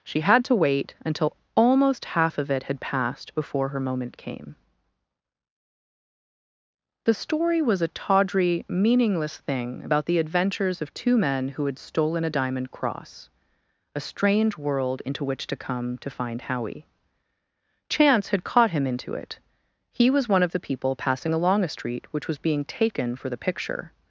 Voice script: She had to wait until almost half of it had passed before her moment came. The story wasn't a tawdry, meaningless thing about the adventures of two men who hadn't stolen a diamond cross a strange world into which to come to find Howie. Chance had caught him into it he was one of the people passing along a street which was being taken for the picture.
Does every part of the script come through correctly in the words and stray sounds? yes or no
no